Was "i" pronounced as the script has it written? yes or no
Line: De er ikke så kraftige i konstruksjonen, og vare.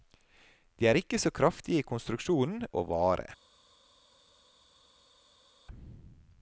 yes